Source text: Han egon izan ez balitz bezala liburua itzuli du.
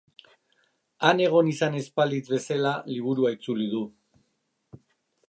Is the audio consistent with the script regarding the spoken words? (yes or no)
yes